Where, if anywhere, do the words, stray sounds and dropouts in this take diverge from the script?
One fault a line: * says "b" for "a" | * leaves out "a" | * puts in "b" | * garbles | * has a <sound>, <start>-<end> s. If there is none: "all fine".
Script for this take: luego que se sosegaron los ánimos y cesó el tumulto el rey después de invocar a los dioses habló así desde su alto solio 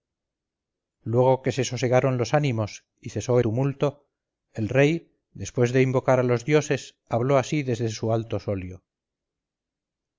* leaves out "el"